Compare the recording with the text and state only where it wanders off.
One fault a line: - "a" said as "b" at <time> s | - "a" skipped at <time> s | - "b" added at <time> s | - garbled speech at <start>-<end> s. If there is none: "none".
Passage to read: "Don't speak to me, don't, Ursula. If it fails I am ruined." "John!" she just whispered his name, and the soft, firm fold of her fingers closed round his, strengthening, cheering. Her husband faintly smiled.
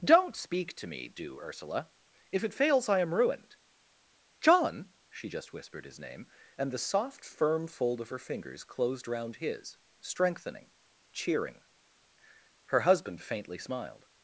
- "don't" said as "do" at 1.1 s